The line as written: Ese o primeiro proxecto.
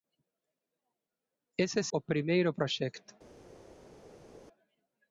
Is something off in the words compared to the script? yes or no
no